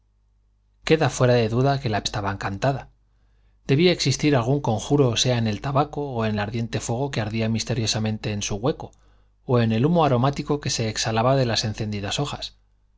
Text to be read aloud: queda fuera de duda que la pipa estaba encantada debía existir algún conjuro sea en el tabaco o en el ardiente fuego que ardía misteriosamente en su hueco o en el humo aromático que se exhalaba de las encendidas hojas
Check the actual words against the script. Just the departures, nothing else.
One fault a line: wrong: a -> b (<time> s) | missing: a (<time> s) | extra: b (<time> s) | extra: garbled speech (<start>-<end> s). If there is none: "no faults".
missing: pipa (2.0 s)